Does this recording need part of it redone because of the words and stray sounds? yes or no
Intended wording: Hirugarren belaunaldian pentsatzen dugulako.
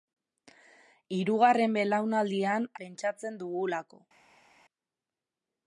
no